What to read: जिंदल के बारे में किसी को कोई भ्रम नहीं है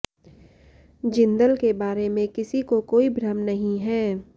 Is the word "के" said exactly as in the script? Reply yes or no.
yes